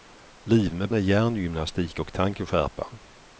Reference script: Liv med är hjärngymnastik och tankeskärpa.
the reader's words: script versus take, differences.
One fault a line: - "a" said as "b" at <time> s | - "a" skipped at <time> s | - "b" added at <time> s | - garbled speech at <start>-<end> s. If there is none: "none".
none